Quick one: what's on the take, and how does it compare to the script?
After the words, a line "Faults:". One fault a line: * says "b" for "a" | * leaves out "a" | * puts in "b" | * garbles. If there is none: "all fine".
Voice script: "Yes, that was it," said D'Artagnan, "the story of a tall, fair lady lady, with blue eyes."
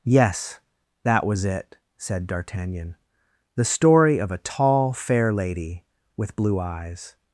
"Yes, that was it," said D'Artagnan, "the story of a tall, fair lady, with blue eyes."
Faults:
* leaves out "lady"